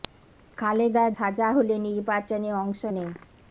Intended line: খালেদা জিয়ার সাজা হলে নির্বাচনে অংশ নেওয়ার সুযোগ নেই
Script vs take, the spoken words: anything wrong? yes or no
yes